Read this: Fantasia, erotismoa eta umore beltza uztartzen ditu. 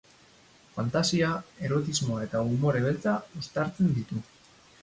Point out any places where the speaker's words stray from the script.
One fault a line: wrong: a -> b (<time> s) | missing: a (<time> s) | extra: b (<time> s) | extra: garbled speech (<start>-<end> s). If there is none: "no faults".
no faults